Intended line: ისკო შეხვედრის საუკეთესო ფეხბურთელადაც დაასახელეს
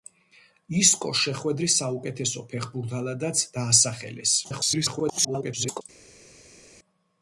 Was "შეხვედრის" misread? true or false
false